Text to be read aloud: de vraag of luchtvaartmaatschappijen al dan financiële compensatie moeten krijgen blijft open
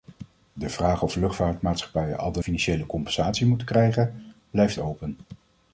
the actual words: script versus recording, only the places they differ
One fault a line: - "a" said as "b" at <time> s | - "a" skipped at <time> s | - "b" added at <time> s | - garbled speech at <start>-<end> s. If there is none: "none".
none